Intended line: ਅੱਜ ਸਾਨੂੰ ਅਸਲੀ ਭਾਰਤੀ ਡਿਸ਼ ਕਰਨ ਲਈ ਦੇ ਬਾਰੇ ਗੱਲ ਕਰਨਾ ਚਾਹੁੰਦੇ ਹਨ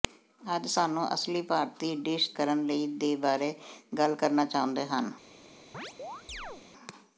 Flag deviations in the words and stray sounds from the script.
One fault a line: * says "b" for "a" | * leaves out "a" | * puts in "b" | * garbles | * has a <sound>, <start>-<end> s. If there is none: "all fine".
* has a chirp, 5.7-6.6 s